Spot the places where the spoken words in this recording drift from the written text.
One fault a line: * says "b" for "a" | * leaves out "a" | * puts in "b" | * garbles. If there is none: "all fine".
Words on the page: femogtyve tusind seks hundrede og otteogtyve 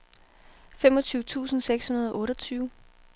all fine